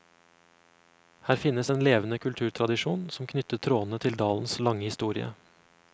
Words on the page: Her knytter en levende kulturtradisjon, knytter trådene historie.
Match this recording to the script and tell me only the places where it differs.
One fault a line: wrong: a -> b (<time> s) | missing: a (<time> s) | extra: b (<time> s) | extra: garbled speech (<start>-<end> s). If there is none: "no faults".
wrong: knytter -> finnes (1.4 s)
extra: som (3.1 s)
extra: til dalens lange (4.0 s)